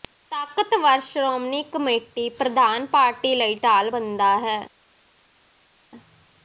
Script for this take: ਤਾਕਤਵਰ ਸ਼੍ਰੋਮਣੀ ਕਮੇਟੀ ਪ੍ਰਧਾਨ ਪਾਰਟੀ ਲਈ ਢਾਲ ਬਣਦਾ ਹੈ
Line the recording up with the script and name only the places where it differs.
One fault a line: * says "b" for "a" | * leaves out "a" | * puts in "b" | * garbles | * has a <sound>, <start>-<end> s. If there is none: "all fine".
all fine